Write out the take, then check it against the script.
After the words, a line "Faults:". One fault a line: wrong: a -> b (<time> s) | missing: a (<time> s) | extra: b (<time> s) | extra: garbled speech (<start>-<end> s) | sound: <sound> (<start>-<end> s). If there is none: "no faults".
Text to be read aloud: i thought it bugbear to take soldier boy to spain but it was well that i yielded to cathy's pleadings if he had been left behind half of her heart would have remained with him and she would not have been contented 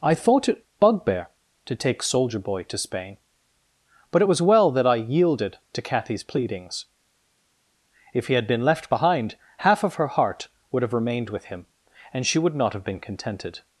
i thought it bugbear to take soldier boy to spain but it was well that i yielded to cathy's pleadings if he had been left behind half of her heart would have remained with him and she would not have been contented
Faults:
no faults